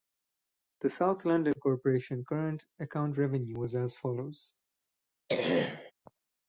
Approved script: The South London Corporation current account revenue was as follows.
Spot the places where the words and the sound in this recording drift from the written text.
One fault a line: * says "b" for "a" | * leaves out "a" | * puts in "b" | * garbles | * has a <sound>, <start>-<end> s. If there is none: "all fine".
* has a throat clearing, 5.3-5.9 s